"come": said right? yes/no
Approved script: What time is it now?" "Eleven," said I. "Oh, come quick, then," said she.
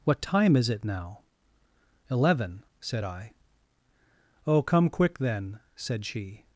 yes